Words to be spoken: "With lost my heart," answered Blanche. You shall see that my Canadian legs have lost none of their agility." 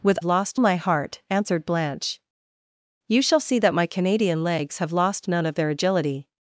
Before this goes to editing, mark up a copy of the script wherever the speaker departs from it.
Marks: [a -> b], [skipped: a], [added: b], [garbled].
"With lost my heart," answered Blanche. You shall see that my Canadian legs have lost none of their agility."